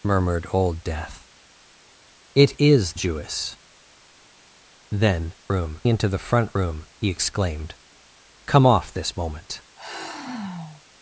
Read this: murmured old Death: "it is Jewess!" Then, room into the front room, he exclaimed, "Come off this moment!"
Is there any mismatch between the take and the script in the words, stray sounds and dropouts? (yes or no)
yes